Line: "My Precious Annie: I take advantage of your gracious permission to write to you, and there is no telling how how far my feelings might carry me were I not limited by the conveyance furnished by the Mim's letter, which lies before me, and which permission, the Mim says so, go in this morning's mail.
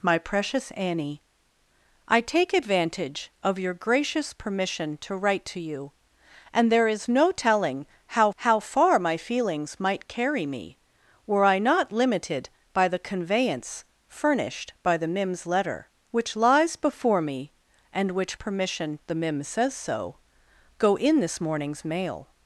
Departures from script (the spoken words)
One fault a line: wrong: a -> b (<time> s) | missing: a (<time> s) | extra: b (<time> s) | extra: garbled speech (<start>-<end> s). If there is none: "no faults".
no faults